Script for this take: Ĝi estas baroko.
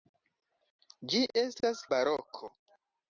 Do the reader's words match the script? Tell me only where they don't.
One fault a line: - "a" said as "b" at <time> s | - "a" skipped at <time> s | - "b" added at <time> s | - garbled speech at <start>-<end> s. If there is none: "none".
none